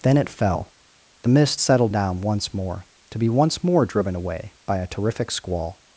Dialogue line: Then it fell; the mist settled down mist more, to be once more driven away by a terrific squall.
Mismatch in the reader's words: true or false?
true